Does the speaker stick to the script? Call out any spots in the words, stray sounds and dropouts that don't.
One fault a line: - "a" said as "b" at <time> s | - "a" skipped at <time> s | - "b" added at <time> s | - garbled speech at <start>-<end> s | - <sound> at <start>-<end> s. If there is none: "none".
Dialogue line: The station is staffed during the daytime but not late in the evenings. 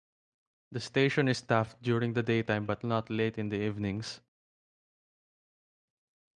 none